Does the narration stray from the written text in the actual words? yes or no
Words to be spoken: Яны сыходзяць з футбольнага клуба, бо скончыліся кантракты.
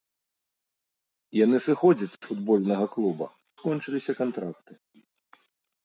yes